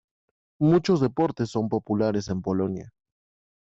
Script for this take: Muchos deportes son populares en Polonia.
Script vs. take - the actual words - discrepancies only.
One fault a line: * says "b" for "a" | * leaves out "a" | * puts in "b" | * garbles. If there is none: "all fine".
all fine